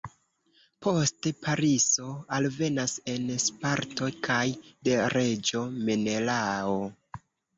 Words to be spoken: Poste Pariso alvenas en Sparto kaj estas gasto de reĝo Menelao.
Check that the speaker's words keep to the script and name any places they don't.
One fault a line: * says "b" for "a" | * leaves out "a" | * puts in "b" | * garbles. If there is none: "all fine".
* leaves out "estas gasto"